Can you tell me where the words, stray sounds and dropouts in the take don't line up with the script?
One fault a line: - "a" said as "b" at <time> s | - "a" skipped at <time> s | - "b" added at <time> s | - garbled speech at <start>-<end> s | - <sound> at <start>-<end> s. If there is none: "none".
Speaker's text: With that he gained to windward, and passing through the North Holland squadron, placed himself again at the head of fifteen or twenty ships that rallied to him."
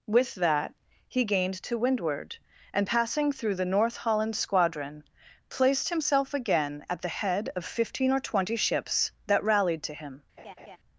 - laugh at 10.4-10.8 s